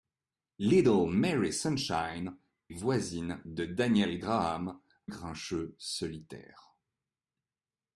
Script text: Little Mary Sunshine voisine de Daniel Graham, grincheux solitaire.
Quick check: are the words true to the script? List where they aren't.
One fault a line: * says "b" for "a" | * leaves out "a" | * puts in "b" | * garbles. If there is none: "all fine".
all fine